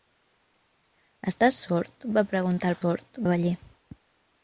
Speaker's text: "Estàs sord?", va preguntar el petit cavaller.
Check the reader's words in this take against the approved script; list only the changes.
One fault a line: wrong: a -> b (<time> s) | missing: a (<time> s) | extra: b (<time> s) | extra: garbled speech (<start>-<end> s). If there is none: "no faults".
wrong: petit -> sord (2.8 s)